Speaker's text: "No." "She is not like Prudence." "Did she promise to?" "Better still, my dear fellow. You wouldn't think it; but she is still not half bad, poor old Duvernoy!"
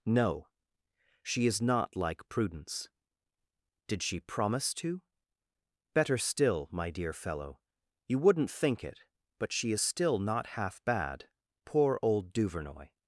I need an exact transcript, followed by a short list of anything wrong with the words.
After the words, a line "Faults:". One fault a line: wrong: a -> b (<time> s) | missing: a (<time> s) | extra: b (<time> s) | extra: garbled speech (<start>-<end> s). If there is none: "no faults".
"No." "She is not like Prudence." "Did she promise to?" "Better still, my dear fellow. You wouldn't think it; but she is still not half bad, poor old Duvernoy!"
Faults:
no faults